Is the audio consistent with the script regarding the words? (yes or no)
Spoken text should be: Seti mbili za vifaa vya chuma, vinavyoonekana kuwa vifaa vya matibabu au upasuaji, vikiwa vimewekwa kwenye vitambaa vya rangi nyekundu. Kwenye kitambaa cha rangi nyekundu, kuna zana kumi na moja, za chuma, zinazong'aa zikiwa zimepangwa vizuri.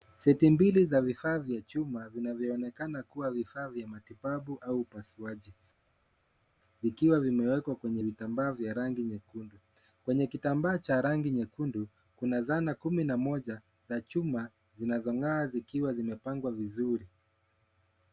yes